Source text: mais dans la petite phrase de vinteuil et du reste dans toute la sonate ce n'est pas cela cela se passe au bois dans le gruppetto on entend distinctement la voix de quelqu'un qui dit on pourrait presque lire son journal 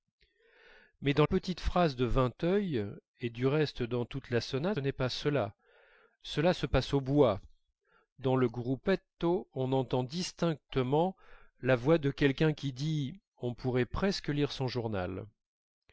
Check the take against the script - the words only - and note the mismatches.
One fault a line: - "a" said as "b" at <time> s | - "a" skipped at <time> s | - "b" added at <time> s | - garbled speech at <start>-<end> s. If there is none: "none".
- "la" skipped at 1.3 s
- "ce" skipped at 4.8 s